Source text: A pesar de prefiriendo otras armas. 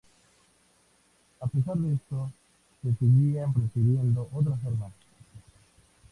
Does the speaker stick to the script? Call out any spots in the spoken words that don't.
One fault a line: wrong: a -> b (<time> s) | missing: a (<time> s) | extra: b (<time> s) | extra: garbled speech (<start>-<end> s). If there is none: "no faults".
extra: esto se seguían (1.9 s)